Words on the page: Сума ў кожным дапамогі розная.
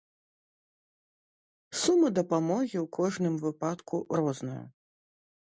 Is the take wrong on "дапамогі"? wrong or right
wrong